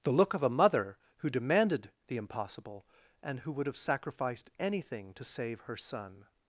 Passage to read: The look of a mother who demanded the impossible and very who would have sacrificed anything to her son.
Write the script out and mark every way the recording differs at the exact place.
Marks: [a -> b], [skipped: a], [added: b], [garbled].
The look of a mother who demanded the impossible and [skipped: very] who would have sacrificed anything to [added: save] her son.